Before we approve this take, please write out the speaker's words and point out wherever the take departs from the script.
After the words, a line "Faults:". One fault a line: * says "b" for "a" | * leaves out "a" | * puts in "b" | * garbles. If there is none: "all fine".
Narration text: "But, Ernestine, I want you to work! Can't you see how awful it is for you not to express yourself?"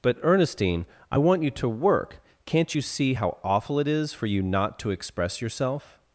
"But, Ernestine, I want you to work! Can't you see how awful it is for you not to express yourself?"
Faults:
all fine